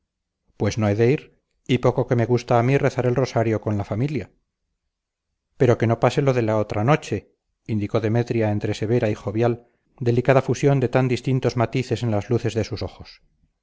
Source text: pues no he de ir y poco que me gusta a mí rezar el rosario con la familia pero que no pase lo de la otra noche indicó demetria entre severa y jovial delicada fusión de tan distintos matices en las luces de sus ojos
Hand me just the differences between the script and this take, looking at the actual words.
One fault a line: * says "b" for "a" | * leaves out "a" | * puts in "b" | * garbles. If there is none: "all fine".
all fine